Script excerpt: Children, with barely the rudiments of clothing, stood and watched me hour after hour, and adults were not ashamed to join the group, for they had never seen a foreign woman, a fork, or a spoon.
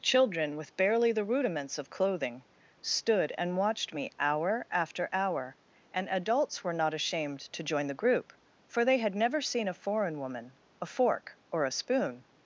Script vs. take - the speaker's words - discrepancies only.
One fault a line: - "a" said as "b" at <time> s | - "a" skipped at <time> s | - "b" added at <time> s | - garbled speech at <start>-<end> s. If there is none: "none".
none